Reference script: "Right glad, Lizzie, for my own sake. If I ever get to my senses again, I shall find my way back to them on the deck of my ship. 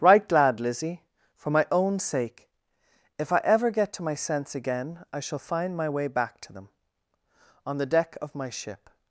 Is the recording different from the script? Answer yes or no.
yes